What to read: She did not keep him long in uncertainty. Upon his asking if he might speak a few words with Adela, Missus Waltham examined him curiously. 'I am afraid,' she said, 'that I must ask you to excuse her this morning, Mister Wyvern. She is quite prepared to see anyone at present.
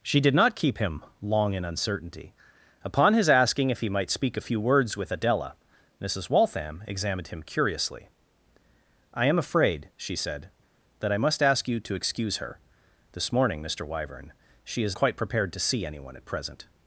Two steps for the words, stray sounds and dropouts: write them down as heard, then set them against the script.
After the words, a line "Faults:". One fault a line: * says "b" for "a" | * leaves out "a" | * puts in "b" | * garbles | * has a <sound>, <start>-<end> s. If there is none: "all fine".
She did not keep him long in uncertainty. Upon his asking if he might speak a few words with Adela, Missus Waltham examined him curiously. 'I am afraid,' she said, 'that I must ask you to excuse her this morning, Mister Wyvern. She is quite prepared to see anyone at present.
Faults:
all fine